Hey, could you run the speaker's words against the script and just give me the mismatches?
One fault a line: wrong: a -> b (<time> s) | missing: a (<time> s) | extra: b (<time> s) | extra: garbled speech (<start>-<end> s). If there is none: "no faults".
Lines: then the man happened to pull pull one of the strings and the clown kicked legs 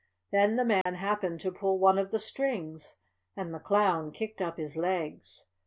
missing: pull (1.8 s)
extra: up his (4.4 s)